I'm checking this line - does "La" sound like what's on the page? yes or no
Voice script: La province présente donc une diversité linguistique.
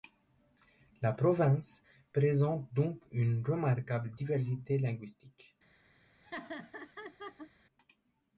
yes